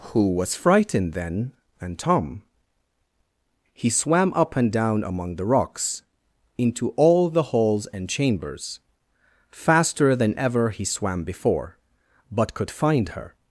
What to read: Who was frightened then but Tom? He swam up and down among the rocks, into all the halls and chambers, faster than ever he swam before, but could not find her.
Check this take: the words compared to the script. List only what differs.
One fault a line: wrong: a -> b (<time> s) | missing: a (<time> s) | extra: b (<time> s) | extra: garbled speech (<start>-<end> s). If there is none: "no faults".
wrong: but -> and (1.8 s)
missing: not (12.7 s)